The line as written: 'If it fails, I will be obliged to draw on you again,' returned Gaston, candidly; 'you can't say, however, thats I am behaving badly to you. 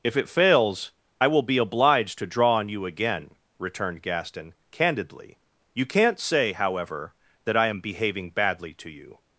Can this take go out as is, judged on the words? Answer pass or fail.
fail